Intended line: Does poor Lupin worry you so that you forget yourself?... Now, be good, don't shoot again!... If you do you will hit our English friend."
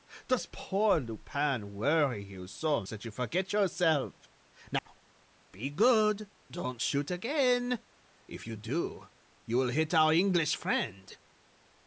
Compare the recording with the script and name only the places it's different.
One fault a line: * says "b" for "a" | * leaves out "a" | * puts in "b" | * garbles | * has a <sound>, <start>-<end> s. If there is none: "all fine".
* has a dropout, 4.8-4.9 s